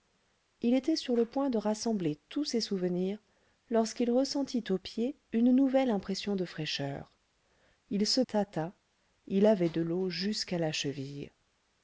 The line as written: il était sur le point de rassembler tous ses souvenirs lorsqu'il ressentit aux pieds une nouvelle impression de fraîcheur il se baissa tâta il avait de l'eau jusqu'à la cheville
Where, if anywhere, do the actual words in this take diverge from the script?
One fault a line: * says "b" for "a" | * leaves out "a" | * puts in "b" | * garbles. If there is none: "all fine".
* leaves out "baissa"